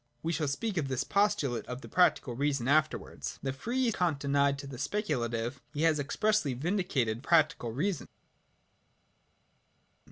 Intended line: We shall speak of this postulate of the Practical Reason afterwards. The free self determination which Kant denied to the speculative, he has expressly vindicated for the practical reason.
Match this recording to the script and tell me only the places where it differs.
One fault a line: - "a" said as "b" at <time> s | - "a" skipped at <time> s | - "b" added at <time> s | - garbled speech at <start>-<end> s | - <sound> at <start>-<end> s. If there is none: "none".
- "self determination which" skipped at 3.9 s
- "for the" skipped at 7.2 s